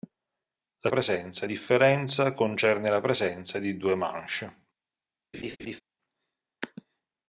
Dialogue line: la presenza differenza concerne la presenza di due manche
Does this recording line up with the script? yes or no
yes